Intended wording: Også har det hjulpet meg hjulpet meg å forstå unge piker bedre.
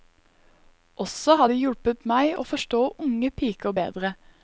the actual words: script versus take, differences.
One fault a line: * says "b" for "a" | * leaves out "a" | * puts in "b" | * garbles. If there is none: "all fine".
* leaves out "hjulpet meg"